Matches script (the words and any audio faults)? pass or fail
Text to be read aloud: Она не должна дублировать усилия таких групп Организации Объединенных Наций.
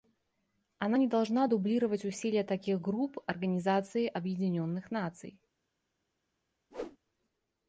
fail